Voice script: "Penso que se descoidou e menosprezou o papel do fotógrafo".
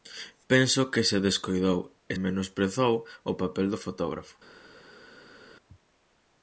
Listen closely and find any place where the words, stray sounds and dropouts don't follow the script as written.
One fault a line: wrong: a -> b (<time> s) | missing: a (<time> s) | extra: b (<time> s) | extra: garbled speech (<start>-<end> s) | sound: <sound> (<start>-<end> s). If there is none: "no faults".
no faults